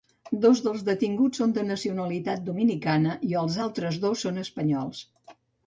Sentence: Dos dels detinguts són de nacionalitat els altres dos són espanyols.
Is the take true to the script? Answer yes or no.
no